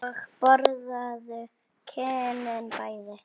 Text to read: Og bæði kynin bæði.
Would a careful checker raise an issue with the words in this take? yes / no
yes